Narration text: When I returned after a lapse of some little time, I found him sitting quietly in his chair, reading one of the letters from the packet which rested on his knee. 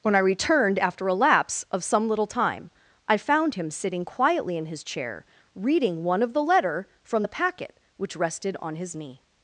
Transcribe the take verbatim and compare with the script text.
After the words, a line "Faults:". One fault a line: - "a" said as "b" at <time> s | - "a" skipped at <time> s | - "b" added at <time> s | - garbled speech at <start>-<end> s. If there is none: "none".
When I returned after a lapse of some little time, I found him sitting quietly in his chair, reading one of the letter from the packet which rested on his knee.
Faults:
- "letters" said as "letter" at 6.4 s